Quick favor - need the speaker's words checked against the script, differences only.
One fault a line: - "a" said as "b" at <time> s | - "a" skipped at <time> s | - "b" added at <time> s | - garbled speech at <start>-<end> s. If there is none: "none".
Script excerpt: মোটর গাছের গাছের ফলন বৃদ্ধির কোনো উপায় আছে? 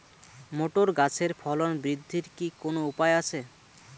- "গাছের" skipped at 1.3 s
- "কি" added at 2.4 s